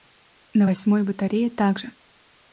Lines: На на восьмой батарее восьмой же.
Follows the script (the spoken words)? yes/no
no